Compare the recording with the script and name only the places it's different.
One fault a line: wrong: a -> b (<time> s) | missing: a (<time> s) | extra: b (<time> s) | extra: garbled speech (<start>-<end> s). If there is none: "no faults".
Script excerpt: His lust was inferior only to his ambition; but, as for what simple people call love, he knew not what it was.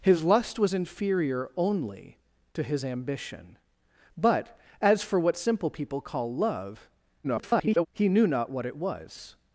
extra: garbled speech (7.2-7.9 s)